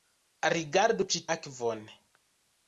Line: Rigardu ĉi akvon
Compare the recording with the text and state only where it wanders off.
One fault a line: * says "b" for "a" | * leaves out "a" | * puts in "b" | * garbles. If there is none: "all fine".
all fine